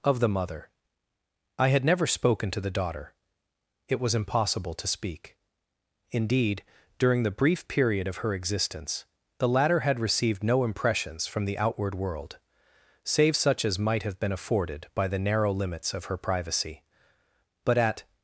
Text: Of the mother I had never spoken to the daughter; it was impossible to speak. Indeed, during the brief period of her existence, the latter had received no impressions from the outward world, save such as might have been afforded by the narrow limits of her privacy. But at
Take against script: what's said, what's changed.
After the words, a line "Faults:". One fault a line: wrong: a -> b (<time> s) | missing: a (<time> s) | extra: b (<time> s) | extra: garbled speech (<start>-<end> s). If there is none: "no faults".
Of the mother I had never spoken to the daughter; it was impossible to speak. Indeed, during the brief period of her existence, the latter had received no impressions from the outward world, save such as might have been afforded by the narrow limits of her privacy. But at
Faults:
no faults